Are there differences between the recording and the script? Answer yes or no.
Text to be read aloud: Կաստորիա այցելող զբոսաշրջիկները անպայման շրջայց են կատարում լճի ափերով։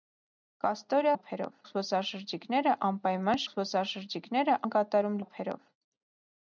yes